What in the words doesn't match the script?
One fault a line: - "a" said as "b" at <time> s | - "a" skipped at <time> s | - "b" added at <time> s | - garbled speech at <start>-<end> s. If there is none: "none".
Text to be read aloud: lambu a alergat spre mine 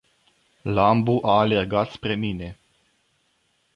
none